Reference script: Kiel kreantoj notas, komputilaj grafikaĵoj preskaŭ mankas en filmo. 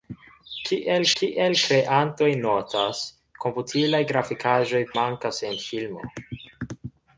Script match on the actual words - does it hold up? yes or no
no